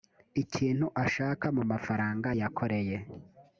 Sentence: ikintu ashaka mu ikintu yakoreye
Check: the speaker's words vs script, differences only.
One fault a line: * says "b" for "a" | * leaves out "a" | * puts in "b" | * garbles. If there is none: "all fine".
* says "mafaranga" for "ikintu"